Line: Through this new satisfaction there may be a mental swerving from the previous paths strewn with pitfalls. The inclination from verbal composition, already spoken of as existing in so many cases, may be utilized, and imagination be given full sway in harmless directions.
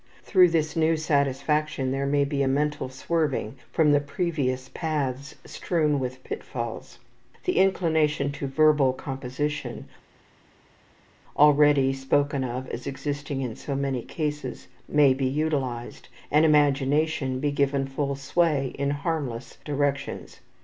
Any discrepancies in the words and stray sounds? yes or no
yes